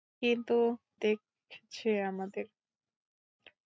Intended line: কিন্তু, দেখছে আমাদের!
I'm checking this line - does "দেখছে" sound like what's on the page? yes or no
yes